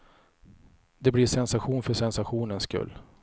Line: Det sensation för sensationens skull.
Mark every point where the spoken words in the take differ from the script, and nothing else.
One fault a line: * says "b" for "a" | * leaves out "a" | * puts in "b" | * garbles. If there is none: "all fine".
* puts in "blir"